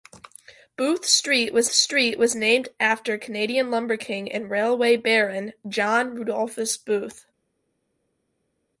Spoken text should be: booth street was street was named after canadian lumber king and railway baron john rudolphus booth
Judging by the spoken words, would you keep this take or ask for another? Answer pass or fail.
pass